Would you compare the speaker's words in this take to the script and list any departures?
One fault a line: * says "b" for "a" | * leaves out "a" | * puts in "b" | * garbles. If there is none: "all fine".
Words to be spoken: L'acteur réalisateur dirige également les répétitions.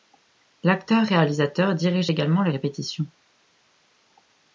all fine